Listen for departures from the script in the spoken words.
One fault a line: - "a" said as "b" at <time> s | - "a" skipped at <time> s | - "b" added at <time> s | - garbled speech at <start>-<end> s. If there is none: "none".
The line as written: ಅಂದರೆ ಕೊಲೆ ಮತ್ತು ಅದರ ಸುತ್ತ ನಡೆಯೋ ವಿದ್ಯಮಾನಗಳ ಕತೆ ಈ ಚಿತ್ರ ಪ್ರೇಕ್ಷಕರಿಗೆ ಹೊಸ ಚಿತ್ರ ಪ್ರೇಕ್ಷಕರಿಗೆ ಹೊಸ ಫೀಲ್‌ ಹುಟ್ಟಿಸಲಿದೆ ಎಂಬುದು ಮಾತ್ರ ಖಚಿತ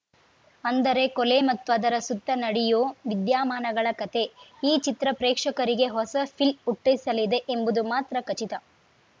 - "ಚಿತ್ರ ಪ್ರೇಕ್ಷಕರಿಗೆ ಹೊಸ" skipped at 6.1 s